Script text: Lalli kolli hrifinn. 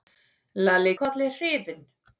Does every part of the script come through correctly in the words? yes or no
yes